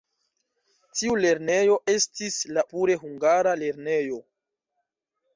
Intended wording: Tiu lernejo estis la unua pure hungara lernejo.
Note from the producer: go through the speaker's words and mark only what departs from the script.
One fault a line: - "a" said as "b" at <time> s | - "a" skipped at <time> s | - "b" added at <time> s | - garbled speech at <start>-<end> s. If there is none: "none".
- "unua" skipped at 2.6 s